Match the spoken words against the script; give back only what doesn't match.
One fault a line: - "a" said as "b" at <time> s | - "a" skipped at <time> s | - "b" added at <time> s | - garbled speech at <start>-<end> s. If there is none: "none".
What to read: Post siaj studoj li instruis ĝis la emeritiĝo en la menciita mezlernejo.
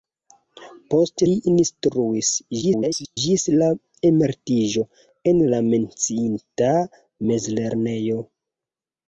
- "siaj studoj" skipped at 1.2 s
- garbled speech at 2.6-3.2 s